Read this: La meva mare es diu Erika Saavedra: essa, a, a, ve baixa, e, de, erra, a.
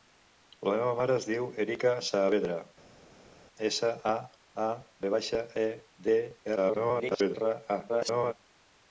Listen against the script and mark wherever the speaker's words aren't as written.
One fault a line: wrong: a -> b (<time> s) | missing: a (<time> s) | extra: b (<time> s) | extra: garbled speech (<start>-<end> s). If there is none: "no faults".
extra: garbled speech (6.6-7.3 s)
extra: garbled speech (7.9-8.3 s)